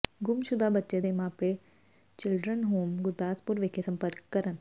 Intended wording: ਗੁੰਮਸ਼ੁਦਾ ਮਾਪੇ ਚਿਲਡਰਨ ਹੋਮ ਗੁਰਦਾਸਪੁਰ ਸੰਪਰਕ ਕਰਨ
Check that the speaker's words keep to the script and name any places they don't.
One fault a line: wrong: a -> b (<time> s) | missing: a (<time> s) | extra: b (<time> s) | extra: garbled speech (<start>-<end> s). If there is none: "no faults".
extra: ਬੱਚੇ ਦੇ (0.7 s)
extra: ਵਿਖੇ (3.6 s)